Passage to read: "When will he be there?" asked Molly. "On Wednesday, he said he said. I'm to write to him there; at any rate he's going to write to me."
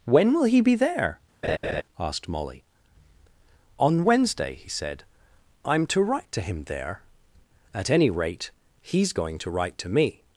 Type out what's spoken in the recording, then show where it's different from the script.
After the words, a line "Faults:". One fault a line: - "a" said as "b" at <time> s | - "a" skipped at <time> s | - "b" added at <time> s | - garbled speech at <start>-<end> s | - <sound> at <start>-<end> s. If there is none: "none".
"When will he be there?" asked Molly. "On Wednesday, he said. I'm to write to him there; at any rate he's going to write to me."
Faults:
- laugh at 1.4-1.8 s
- "he said" skipped at 5.0 s